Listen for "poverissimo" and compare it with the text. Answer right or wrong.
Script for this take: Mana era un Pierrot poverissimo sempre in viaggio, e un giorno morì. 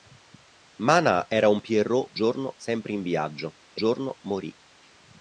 wrong